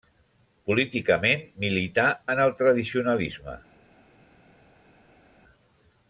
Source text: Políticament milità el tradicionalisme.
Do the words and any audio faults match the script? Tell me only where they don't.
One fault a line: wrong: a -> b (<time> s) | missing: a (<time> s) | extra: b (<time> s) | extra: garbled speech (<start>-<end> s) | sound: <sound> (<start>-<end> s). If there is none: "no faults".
extra: en (2.3 s)